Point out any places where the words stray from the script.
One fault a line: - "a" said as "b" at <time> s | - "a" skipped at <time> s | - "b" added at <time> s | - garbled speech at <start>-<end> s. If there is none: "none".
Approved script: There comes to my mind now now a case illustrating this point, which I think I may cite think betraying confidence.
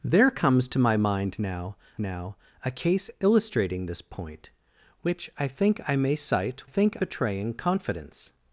none